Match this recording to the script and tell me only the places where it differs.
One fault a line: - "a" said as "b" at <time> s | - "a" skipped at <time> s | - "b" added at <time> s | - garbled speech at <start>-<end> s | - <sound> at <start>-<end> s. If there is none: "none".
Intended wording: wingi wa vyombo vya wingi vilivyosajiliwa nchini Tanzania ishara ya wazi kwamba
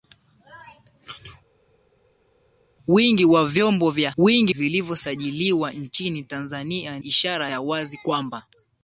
none